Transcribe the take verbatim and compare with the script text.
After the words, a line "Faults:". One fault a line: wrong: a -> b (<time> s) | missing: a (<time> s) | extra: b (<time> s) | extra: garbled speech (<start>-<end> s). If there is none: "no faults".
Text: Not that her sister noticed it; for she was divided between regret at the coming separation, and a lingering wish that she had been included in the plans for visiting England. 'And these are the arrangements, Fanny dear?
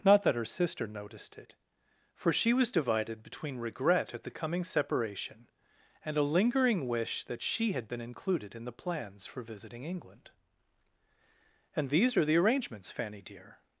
Not that her sister noticed it; for she was divided between regret at the coming separation, and a lingering wish that she had been included in the plans for visiting England. 'And these are the arrangements, Fanny dear?
Faults:
no faults